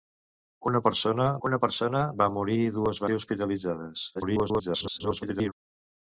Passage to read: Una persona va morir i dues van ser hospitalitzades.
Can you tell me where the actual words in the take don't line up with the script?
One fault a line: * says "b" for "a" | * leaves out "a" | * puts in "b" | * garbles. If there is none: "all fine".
* puts in "una persona"
* leaves out "van"
* garbles